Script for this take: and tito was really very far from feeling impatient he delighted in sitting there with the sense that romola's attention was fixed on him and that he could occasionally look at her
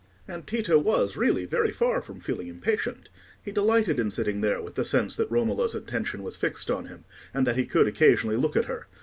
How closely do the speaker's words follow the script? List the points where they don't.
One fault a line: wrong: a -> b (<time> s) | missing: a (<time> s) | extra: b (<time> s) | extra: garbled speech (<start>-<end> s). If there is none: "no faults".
no faults